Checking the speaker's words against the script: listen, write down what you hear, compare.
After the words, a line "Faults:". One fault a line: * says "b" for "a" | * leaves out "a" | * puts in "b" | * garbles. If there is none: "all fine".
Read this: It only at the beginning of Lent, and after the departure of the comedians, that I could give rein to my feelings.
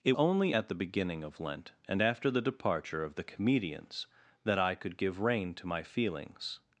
It only at the beginning of Lent, and after the departure of the comedians, that I could give rein to my feelings.
Faults:
all fine